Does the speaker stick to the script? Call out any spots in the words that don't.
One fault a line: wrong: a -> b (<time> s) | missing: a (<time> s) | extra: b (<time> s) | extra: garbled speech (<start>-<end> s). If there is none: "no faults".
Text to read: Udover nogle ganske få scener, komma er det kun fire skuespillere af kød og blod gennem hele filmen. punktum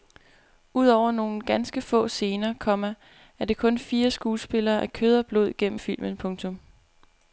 missing: hele (5.8 s)